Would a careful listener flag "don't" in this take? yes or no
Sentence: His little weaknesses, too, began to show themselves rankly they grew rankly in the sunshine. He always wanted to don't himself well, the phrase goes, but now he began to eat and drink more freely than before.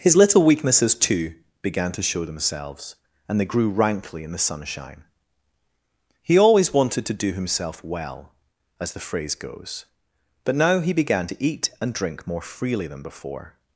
yes